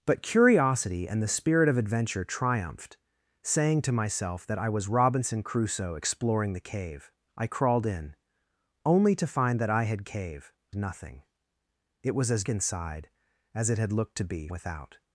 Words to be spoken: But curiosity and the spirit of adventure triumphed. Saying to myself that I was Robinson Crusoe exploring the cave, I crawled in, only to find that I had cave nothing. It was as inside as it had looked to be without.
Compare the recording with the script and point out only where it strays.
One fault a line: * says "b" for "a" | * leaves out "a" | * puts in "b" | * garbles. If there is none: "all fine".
all fine